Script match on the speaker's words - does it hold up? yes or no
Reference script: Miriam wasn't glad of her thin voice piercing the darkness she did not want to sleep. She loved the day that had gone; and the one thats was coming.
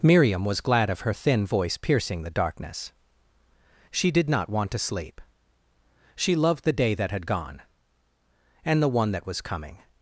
no